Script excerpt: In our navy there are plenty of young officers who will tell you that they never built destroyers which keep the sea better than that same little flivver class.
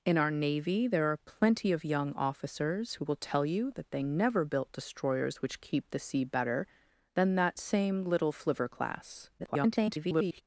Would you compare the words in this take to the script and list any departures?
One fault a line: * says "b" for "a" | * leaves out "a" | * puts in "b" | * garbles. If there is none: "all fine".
* garbles